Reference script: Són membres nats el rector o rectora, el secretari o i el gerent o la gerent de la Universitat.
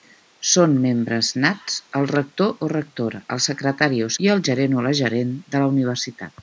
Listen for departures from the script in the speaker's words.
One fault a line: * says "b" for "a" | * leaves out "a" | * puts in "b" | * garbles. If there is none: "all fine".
all fine